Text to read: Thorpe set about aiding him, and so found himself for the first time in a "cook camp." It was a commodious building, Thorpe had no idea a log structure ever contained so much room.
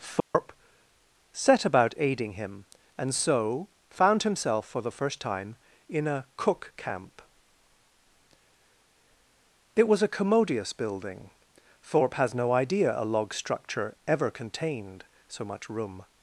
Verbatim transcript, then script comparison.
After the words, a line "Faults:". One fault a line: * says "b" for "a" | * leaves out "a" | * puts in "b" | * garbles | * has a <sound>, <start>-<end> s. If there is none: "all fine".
Thorpe set about aiding him, and so found himself for the first time in a "cook camp." It was a commodious building, Thorpe has no idea a log structure ever contained so much room.
Faults:
* has a dropout, 0.2-0.3 s
* says "has" for "had"